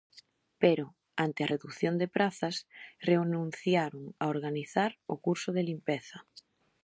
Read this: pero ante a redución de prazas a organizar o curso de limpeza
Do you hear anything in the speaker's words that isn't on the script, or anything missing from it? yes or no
yes